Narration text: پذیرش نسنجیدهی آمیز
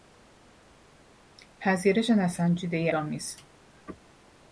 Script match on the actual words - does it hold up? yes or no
yes